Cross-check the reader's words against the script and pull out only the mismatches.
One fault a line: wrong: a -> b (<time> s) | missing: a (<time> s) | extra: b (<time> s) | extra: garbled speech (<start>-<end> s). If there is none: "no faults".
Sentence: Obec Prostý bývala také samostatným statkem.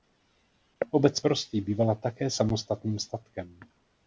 no faults